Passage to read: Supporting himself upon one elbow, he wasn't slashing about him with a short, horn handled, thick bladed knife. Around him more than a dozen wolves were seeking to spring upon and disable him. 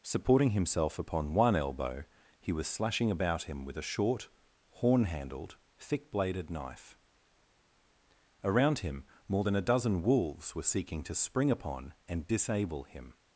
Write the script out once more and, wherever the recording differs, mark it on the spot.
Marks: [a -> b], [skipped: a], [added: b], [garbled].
Supporting himself upon one elbow, he [wasn't -> was] slashing about him with a short, horn handled, thick bladed knife. Around him more than a dozen wolves were seeking to spring upon and disable him.